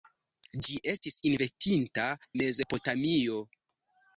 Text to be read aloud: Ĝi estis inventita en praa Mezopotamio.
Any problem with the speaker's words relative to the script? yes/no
yes